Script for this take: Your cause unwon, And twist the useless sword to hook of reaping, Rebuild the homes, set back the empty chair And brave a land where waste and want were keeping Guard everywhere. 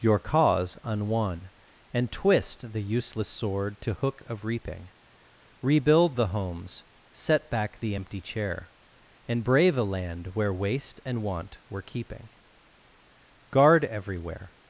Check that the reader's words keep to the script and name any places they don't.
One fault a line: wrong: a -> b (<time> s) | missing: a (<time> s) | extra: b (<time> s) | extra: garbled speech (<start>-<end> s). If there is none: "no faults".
no faults